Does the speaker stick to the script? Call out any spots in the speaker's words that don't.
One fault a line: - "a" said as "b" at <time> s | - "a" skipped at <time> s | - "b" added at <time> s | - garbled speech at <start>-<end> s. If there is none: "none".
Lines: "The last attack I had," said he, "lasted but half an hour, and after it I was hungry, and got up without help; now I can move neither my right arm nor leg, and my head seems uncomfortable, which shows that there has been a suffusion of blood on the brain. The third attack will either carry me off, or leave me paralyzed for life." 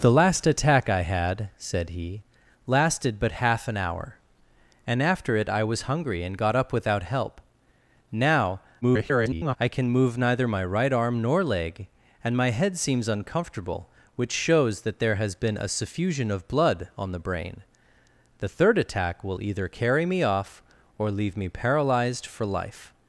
- garbled speech at 8.8-9.6 s